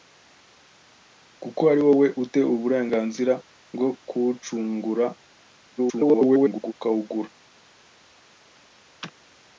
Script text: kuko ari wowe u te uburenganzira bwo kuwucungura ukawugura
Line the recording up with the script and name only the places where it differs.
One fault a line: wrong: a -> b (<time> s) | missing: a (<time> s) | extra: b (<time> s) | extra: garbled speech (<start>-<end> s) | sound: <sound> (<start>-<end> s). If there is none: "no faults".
extra: garbled speech (5.8-6.7 s)